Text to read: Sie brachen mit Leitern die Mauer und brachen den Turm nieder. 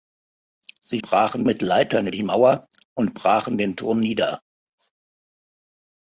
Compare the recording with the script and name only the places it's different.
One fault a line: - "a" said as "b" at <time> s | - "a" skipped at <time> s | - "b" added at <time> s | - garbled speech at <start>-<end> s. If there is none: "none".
none